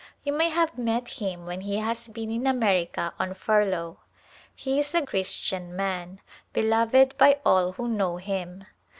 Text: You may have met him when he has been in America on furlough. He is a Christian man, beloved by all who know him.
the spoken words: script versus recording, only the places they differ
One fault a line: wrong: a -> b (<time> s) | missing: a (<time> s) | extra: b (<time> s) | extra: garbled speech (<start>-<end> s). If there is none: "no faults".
no faults